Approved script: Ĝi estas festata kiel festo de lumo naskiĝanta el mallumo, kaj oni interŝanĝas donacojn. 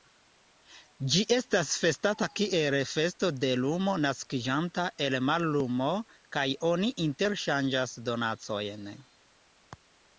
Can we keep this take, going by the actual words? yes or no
yes